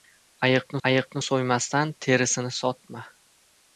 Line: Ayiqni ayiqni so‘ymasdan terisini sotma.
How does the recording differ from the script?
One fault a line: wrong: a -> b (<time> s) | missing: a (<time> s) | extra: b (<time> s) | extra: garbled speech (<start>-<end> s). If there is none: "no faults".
no faults